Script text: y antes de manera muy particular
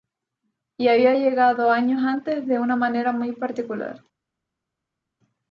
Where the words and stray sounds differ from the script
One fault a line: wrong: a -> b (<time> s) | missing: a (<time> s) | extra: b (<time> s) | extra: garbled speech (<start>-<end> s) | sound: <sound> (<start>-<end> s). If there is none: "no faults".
extra: había llegado años (0.9 s)
extra: una (2.6 s)